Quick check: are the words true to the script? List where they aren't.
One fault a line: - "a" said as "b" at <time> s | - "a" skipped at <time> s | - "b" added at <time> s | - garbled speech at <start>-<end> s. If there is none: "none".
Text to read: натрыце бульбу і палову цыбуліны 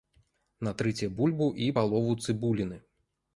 none